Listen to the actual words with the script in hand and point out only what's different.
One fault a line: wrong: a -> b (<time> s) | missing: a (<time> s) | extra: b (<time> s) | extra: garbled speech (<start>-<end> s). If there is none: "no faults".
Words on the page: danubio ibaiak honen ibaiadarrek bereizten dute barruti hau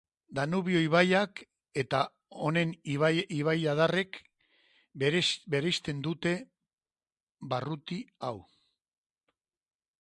extra: eta (1.8 s)